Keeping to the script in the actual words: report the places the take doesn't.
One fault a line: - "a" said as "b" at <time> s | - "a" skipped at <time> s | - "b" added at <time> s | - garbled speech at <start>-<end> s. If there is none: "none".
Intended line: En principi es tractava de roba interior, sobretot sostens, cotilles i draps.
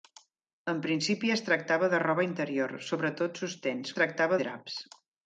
- "cotilles" said as "tractava" at 4.0 s